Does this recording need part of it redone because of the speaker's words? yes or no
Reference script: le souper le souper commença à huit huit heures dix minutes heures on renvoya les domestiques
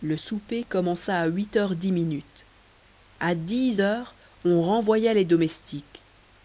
yes